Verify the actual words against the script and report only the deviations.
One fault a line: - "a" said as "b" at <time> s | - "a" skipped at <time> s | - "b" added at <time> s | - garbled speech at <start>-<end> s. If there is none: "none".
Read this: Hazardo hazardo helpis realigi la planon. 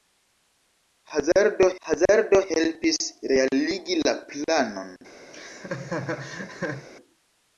none